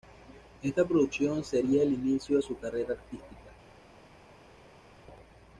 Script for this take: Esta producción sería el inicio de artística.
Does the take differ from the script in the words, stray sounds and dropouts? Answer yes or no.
yes